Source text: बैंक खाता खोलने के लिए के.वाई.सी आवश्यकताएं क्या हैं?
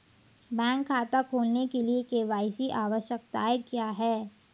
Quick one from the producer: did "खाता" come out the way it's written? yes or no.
yes